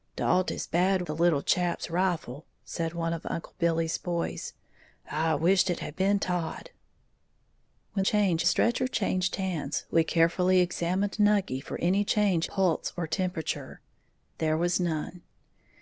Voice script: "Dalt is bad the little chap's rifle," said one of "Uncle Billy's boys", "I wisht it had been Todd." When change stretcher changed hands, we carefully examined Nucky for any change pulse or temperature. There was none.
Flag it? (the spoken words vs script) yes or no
no